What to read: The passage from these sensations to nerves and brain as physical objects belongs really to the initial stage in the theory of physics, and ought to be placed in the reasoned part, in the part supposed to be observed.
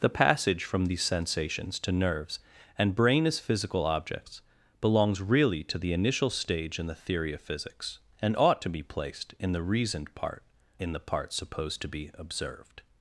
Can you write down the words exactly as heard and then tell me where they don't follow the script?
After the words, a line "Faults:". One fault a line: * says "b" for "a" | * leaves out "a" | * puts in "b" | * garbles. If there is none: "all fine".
The passage from these sensations to nerves and brain as physical objects belongs really to the initial stage in the theory of physics, and ought to be placed in the reasoned part, in the part supposed to be observed.
Faults:
all fine